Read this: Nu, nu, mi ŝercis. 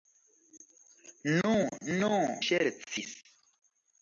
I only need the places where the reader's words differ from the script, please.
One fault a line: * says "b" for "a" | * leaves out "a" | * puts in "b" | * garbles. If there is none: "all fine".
* leaves out "mi"